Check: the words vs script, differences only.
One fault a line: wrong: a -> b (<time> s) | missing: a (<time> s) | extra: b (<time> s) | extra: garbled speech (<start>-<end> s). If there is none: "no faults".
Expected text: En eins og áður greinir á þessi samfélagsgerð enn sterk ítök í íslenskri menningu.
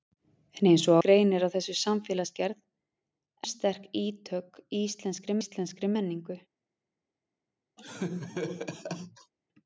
missing: áður (0.9 s)
missing: enn (2.6 s)
extra: íslenskri (5.4 s)